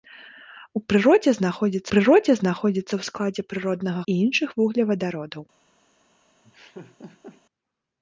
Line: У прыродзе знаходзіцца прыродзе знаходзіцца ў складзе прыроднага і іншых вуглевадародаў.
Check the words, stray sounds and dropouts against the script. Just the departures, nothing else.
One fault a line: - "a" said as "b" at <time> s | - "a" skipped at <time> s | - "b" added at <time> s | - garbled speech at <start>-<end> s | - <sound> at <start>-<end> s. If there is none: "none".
- laugh at 6.4-7.4 s